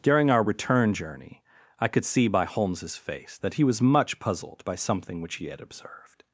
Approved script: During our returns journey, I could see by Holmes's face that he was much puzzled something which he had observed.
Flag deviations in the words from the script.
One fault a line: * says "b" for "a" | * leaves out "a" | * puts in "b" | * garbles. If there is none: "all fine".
* says "return" for "returns"
* puts in "by"